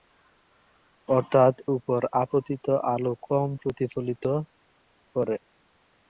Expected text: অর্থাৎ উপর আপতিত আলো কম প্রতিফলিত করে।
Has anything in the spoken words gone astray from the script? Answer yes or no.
no